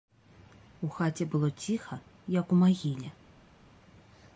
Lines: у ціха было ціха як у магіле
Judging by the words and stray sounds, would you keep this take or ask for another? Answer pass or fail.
fail